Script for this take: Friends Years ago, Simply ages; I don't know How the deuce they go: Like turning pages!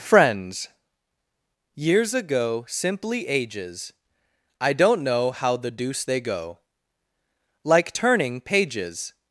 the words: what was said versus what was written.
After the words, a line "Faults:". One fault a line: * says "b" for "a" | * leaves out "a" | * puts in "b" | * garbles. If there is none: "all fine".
Friends Years ago, Simply ages; I don't know How the deuce they go: Like turning pages!
Faults:
all fine